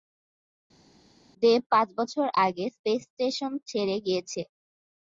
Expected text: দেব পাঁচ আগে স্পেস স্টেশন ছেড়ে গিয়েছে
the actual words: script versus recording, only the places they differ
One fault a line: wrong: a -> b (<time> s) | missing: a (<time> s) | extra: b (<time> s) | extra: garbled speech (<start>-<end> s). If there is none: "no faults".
extra: বছর (2.0 s)